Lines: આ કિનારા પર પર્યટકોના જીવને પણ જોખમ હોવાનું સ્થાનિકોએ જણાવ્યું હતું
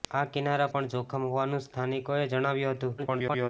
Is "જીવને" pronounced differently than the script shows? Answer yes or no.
yes